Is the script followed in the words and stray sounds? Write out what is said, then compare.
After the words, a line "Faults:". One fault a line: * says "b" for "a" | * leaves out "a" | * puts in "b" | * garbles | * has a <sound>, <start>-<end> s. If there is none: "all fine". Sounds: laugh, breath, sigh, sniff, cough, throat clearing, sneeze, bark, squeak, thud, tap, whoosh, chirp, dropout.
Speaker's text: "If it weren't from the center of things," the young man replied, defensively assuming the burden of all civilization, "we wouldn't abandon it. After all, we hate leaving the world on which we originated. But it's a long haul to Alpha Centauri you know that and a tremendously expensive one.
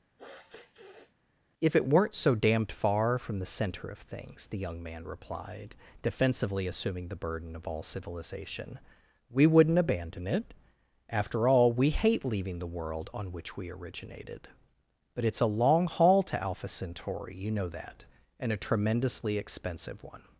"If it weren't so damned far from the center of things," the young man replied, defensively assuming the burden of all civilization, "we wouldn't abandon it. After all, we hate leaving the world on which we originated. But it's a long haul to Alpha Centauri you know that and a tremendously expensive one.
Faults:
* has a sniff, 0.2-1.2 s
* puts in "so damned far"